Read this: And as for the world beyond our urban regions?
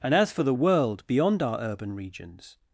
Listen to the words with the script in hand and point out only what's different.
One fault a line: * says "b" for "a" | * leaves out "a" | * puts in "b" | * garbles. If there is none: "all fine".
all fine